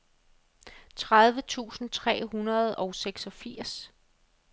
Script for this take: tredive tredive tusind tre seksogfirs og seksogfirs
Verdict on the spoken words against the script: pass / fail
fail